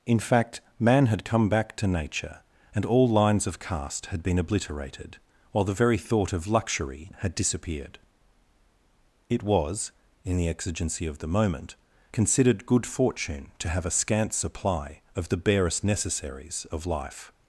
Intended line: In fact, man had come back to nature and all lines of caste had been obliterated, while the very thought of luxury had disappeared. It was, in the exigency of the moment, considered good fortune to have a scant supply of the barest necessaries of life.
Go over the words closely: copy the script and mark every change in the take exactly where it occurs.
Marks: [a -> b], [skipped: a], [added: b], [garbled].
In fact, man had come back to nature and all lines of caste had been obliterated, while the very thought of luxury had disappeared. It was, in the exigency of the moment, considered good fortune to have a scant supply of the barest necessaries of life.